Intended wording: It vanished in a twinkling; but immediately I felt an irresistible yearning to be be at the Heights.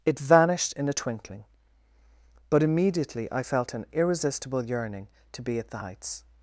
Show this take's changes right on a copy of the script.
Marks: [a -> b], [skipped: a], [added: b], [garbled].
It vanished in a twinkling; but immediately I felt an irresistible yearning to be [skipped: be] at the Heights.